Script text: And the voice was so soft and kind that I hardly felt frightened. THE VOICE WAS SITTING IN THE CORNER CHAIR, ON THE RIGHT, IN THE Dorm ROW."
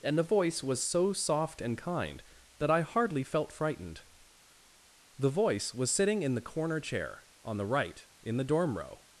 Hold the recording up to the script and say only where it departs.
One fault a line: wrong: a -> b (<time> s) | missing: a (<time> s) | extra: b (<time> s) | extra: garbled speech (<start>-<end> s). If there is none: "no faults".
no faults